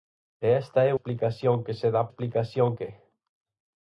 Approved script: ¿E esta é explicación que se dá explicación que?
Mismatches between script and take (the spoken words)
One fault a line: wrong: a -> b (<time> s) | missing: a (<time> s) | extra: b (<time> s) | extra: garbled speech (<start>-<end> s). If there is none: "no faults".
no faults